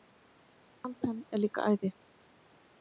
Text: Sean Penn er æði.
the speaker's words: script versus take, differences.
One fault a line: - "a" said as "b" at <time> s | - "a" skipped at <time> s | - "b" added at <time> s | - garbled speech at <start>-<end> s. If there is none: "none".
- "líka" added at 1.4 s